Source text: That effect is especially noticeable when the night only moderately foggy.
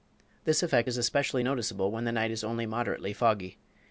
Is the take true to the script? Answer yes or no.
no